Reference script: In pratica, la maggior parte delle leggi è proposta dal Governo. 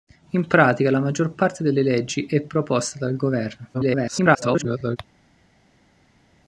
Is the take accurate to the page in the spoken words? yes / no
no